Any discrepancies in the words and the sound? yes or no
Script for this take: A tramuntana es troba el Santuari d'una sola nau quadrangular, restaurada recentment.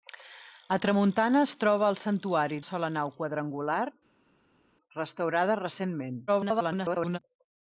yes